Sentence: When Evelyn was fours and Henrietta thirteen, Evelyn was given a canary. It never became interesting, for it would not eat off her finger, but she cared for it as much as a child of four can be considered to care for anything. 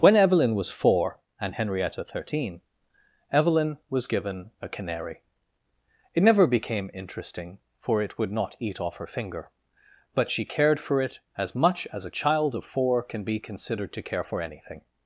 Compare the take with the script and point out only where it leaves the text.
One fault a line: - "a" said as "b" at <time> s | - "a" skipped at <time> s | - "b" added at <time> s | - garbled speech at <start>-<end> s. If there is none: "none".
- "fours" said as "four" at 0.7 s